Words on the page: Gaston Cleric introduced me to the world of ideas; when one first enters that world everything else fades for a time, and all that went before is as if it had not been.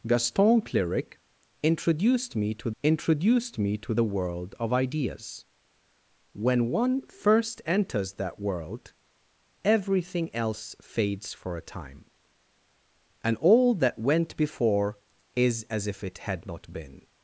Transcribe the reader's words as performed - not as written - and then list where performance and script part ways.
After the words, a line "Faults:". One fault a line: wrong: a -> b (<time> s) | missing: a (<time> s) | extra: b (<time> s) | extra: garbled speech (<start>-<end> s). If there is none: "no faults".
Gaston Cleric introduced me to introduced me to the world of ideas; when one first enters that world everything else fades for a time, and all that went before is as if it had not been.
Faults:
extra: introduced me to (2.8 s)